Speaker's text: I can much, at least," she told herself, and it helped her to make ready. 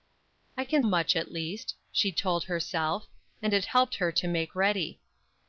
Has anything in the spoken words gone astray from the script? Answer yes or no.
no